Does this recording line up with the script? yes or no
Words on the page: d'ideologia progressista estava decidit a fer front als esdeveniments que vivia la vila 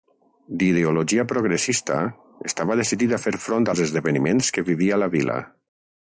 yes